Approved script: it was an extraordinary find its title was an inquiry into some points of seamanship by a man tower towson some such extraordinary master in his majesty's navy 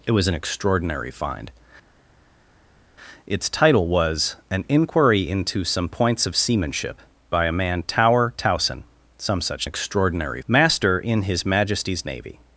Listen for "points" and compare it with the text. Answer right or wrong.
right